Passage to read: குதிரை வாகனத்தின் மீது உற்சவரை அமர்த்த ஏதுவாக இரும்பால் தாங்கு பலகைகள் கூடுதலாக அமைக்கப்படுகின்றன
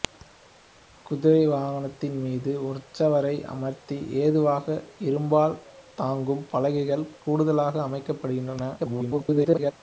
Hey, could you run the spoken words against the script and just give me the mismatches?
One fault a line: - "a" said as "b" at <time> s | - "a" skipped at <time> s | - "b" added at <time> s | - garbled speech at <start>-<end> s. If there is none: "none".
- garbled speech at 8.8-9.7 s